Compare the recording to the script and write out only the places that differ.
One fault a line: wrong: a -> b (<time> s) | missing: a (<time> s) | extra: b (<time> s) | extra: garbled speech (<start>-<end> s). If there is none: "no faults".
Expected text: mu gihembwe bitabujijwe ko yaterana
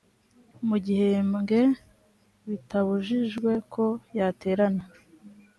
no faults